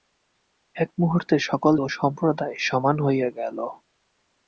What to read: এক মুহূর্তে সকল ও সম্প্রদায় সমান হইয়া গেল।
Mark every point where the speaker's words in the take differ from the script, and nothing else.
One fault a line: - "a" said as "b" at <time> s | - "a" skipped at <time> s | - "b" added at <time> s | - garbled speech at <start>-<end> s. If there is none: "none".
none